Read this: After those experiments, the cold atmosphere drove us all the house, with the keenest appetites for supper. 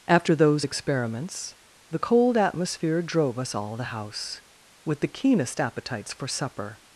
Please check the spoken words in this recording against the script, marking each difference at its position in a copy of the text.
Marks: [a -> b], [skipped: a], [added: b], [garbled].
After those experiments, the cold atmosphere drove us all the house, with the keenest appetites for supper.